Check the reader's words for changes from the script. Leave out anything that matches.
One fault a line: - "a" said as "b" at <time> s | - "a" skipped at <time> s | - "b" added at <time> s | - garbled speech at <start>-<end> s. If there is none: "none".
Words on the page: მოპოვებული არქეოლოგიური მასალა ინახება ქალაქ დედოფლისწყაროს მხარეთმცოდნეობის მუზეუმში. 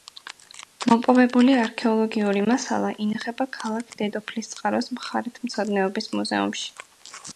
none